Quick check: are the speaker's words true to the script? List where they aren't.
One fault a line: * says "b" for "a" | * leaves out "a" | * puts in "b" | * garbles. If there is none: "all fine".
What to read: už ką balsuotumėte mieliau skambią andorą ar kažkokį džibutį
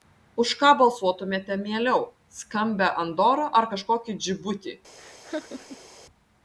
all fine